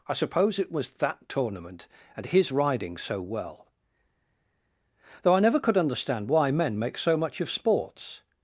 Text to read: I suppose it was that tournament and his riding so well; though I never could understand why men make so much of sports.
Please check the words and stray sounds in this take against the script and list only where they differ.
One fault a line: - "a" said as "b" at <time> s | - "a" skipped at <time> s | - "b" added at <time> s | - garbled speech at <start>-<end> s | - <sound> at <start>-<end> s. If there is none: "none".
none